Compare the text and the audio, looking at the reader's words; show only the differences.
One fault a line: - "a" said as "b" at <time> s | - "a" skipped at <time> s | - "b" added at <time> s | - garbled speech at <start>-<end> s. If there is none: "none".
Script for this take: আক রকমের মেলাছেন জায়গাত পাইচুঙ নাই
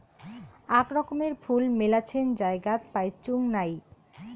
- "ফুল" added at 1.4 s